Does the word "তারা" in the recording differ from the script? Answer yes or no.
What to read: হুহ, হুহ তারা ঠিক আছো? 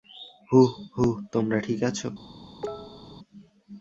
yes